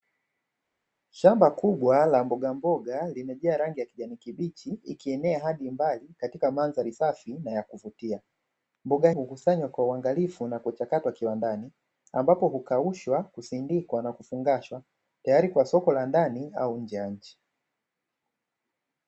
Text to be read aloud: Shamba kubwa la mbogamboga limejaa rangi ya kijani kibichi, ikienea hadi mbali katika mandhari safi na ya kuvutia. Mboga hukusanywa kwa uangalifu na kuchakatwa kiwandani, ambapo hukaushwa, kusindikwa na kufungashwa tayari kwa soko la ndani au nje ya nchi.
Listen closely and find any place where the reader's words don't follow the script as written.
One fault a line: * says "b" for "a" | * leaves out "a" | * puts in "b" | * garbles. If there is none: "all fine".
all fine